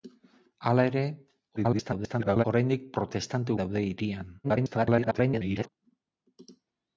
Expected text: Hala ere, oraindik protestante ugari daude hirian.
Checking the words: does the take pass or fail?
fail